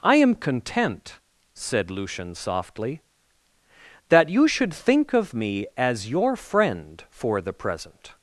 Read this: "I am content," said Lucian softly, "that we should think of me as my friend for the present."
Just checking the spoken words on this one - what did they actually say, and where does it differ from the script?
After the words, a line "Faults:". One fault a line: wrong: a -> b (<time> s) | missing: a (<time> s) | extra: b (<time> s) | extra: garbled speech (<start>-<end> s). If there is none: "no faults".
"I am content," said Lucian softly, "that you should think of me as your friend for the present."
Faults:
wrong: we -> you (4.3 s)
wrong: my -> your (6.1 s)